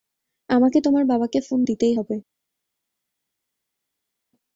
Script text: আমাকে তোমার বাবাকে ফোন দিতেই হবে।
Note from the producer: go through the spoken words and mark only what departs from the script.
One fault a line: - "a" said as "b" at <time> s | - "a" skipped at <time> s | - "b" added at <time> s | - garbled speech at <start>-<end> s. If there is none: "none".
none